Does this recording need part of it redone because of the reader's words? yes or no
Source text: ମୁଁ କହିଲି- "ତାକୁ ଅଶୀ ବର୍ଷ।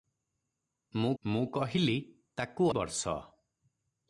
yes